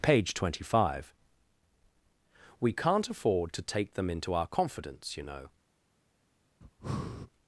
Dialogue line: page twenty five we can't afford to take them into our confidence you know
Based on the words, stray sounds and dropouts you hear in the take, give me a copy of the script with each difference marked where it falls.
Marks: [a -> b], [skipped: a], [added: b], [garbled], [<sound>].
page twenty five we can't afford to take them into our confidence you know [breath]